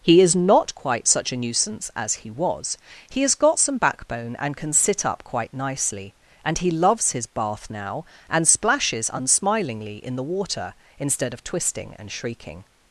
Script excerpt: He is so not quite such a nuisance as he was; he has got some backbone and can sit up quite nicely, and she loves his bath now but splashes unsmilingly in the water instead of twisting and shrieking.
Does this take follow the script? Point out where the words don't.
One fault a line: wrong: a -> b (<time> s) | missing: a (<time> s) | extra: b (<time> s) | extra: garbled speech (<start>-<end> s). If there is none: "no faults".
missing: so (0.3 s)
wrong: she -> he (6.6 s)
wrong: but -> and (8.3 s)